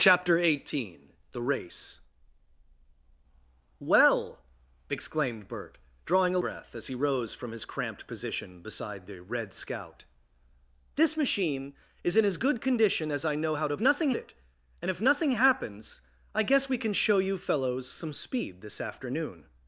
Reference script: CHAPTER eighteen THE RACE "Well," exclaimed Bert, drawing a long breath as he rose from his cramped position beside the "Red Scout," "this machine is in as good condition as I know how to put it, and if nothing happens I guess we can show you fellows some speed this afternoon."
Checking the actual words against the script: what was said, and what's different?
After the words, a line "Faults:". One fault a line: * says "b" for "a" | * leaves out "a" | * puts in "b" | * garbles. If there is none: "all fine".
CHAPTER eighteen THE RACE "Well," exclaimed Bert, drawing a breath as he rose from his cramped position beside the "Red Scout," "this machine is in as good condition as I know how to nothing it, and if nothing happens I guess we can show you fellows some speed this afternoon."
Faults:
* leaves out "long"
* says "nothing" for "put"